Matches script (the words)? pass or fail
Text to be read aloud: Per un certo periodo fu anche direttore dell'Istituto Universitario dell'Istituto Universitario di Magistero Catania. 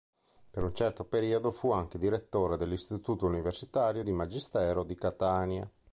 fail